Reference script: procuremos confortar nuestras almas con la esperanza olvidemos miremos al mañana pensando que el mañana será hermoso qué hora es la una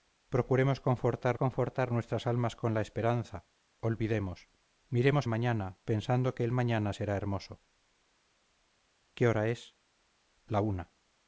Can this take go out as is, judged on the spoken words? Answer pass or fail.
fail